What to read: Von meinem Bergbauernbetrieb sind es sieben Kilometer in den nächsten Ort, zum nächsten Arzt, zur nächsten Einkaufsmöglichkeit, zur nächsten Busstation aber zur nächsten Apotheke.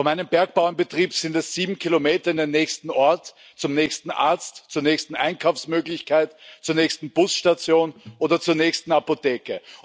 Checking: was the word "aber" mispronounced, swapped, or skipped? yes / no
yes